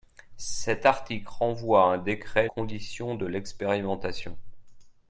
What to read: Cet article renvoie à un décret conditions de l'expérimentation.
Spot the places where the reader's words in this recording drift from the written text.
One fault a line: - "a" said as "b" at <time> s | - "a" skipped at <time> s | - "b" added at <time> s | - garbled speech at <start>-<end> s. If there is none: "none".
none